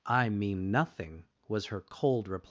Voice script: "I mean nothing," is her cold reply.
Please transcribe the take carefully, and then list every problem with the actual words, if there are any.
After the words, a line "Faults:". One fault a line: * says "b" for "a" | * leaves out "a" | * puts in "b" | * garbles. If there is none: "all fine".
"I mean nothing," was her cold reply.
Faults:
* says "was" for "is"